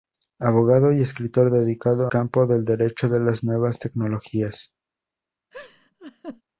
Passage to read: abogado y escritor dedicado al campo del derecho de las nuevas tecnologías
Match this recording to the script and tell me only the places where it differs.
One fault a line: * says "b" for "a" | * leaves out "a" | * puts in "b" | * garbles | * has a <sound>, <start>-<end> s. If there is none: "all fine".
* leaves out "al"
* has a laugh, 5.5-6.4 s